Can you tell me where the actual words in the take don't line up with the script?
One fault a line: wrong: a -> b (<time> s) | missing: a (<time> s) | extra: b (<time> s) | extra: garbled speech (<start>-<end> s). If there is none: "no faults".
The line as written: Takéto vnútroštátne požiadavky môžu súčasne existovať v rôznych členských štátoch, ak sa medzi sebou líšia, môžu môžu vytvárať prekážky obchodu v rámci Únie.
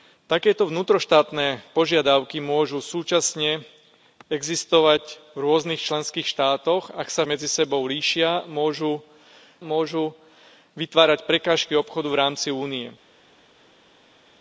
no faults